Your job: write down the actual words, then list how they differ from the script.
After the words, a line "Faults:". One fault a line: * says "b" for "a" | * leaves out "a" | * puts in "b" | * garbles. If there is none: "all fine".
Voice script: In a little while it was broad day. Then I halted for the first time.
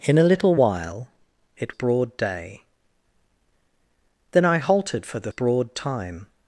In a little while it broad day. Then I halted for the broad time.
Faults:
* leaves out "was"
* says "broad" for "first"